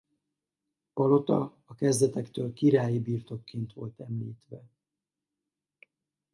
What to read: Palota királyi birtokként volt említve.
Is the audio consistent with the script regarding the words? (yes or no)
no